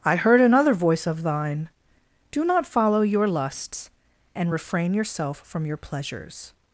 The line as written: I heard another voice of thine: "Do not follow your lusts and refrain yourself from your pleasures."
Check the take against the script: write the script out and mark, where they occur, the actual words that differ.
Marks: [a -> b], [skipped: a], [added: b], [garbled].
I heard another voice of thine: "Do not follow your lusts and refrain yourself from your pleasures."